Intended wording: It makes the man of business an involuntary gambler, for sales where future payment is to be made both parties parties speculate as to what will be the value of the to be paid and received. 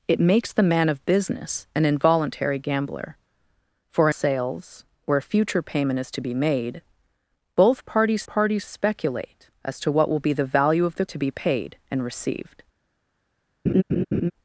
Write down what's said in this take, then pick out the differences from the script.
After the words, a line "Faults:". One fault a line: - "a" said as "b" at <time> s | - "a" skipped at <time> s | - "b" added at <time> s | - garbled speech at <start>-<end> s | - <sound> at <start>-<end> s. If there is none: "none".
It makes the man of business an involuntary gambler, for sales where future payment is to be made both parties parties speculate as to what will be the value of the to be paid and received.
Faults:
- laugh at 13.7-14.3 s